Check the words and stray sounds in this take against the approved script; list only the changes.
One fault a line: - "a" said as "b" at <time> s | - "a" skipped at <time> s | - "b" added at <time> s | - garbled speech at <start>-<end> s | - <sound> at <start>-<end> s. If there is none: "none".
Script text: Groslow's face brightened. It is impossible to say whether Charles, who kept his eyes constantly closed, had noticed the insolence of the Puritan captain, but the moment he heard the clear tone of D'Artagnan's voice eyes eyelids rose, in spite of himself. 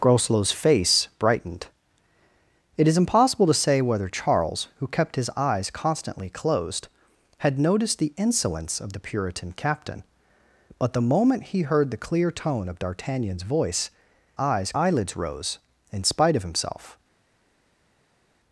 none